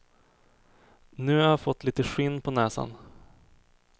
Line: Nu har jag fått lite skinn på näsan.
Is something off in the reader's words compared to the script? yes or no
no